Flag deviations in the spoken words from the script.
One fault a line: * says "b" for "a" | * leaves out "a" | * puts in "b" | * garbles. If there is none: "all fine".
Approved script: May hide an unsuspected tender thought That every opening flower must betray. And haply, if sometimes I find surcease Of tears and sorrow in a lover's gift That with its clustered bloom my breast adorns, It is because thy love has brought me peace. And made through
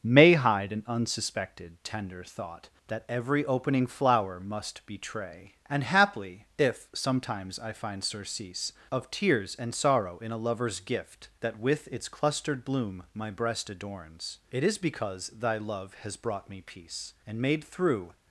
all fine